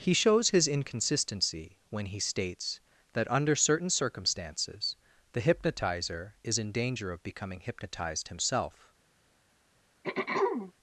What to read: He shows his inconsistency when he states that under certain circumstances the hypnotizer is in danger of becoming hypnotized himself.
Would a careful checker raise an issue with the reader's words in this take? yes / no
no